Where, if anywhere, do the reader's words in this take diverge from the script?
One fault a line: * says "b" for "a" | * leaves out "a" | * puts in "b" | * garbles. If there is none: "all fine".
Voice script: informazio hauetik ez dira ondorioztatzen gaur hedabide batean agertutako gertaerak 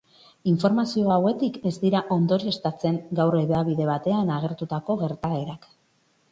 all fine